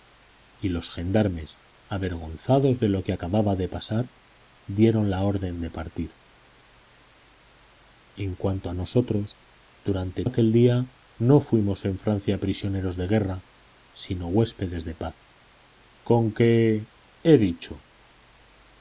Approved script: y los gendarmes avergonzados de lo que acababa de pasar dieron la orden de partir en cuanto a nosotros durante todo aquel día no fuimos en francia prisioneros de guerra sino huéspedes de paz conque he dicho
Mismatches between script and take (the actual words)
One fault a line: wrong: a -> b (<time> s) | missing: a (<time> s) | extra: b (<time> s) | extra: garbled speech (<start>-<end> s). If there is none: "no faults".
missing: todo (10.2 s)